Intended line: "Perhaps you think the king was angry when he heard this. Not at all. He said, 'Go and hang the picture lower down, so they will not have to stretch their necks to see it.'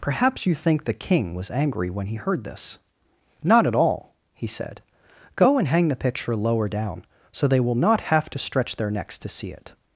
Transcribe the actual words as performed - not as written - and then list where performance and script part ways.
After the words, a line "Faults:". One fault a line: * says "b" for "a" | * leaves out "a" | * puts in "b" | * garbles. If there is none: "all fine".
"Perhaps you think the king was angry when he heard this. Not at all. He said, 'Go and hang the picture lower down, so they will not have to stretch their necks to see it.'
Faults:
all fine